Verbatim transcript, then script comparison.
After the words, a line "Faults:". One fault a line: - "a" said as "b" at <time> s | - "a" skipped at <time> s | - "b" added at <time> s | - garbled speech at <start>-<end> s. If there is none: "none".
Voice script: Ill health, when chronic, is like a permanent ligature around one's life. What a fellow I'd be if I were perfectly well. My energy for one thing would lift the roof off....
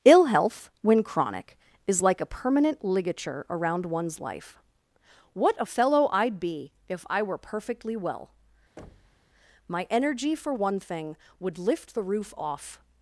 Ill health, when chronic, is like a permanent ligature around one's life. What a fellow I'd be if I were perfectly well. My energy for one thing would lift the roof off....
Faults:
none